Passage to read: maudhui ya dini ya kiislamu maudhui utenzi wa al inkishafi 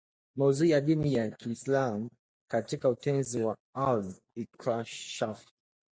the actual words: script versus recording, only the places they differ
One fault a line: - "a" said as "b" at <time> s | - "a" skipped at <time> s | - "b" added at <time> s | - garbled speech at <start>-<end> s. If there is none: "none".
- "maudhui" said as "katika" at 2.5 s